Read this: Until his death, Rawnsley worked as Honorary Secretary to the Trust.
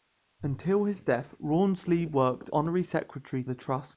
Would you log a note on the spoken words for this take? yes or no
yes